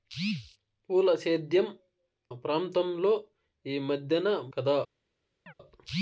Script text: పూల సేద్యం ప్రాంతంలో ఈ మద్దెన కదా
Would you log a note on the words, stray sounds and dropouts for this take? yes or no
yes